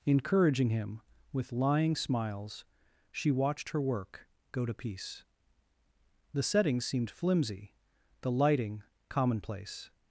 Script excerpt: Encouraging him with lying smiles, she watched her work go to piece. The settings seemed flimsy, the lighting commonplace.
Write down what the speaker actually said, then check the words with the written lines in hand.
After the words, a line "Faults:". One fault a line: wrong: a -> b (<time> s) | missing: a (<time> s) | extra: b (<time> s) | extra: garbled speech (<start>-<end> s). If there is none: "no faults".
Encouraging him with lying smiles, she watched her work go to piece. The settings seemed flimsy, the lighting commonplace.
Faults:
no faults